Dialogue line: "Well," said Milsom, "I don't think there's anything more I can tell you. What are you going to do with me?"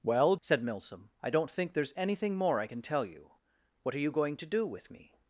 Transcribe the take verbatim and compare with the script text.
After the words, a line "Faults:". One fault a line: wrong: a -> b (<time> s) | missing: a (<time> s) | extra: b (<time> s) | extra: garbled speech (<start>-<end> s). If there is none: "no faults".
"Well," said Milsom, "I don't think there's anything more I can tell you. What are you going to do with me?"
Faults:
no faults